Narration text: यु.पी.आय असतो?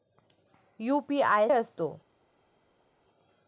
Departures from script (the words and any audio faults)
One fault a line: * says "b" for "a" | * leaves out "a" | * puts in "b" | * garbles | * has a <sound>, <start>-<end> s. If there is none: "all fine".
all fine